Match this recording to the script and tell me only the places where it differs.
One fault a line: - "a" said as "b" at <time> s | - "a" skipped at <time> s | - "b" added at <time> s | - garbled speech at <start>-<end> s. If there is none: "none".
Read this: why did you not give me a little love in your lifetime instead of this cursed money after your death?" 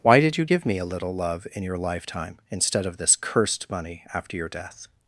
- "not" skipped at 0.5 s